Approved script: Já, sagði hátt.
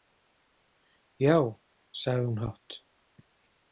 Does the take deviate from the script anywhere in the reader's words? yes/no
yes